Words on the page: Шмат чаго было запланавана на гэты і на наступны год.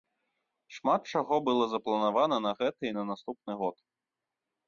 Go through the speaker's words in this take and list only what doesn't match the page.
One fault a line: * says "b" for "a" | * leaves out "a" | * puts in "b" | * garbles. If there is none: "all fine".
all fine